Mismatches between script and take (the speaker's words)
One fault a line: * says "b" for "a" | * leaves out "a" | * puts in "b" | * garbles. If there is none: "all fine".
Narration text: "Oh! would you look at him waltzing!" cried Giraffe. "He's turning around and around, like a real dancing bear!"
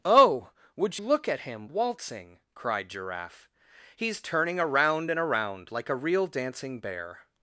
* leaves out "you"